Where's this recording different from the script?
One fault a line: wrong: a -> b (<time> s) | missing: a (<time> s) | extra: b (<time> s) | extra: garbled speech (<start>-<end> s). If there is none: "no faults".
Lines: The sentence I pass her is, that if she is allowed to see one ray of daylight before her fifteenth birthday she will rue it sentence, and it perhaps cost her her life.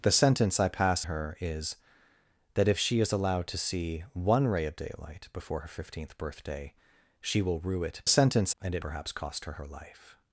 no faults